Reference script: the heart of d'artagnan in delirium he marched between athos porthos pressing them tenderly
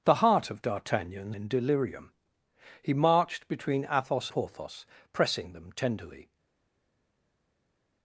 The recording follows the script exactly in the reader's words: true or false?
true